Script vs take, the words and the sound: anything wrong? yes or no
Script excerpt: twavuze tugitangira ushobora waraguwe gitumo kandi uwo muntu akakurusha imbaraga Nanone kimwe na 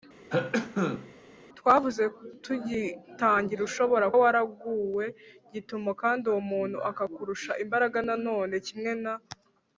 yes